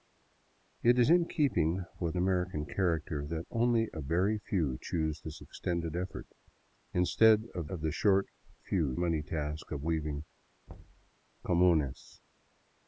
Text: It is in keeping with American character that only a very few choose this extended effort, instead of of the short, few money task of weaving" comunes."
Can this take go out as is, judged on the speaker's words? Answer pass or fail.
pass